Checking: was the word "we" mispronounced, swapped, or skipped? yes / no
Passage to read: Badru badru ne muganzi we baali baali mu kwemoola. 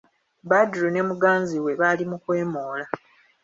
no